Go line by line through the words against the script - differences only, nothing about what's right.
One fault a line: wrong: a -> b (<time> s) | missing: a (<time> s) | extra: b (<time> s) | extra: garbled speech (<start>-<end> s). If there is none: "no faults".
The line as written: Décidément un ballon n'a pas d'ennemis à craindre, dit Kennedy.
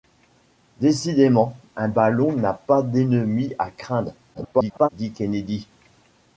extra: garbled speech (4.3-4.9 s)